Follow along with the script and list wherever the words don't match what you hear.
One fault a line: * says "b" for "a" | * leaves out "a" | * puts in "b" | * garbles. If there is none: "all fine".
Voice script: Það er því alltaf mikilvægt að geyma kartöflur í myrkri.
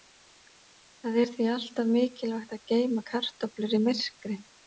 all fine